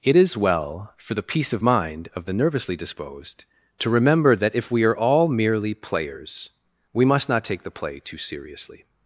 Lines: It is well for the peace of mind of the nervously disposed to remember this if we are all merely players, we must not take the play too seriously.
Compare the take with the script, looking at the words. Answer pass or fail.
fail